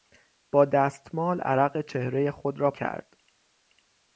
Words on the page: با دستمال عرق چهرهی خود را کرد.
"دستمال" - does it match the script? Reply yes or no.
yes